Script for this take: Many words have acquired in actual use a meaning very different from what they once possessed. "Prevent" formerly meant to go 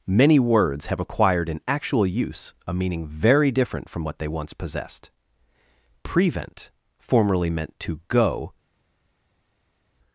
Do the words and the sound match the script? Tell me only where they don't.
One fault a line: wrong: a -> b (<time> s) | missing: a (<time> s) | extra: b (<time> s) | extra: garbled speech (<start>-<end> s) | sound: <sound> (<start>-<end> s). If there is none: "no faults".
no faults